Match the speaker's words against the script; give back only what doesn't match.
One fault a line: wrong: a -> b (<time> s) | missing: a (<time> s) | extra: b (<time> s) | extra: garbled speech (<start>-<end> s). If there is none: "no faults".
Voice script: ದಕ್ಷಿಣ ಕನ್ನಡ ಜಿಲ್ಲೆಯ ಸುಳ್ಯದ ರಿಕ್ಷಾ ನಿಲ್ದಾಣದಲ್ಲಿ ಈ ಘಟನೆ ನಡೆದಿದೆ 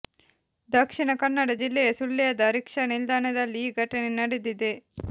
no faults